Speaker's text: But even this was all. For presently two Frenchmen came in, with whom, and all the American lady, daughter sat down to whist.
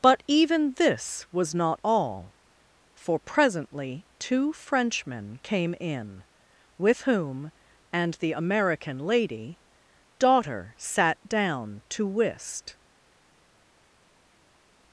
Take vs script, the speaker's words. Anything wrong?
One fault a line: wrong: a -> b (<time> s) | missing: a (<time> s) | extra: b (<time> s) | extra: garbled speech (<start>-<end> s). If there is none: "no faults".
extra: not (1.5 s)
missing: all (8.1 s)